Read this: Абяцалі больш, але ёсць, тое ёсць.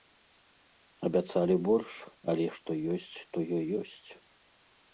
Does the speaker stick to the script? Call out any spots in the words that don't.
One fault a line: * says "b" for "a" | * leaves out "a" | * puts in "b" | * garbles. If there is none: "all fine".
* puts in "што"